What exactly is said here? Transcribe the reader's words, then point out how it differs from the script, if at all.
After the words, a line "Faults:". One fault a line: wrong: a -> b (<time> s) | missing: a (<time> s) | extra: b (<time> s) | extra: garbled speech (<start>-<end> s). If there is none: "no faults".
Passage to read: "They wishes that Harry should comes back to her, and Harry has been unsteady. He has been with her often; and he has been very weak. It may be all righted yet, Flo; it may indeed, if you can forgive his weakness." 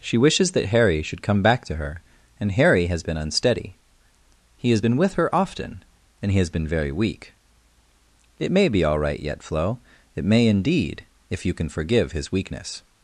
"She wishes that Harry should come back to her, and Harry has been unsteady. He has been with her often; and he has been very weak. It may be all right yet, Flo; it may indeed, if you can forgive his weakness."
Faults:
wrong: They -> She (0.0 s)
wrong: comes -> come (1.2 s)
wrong: righted -> right (9.0 s)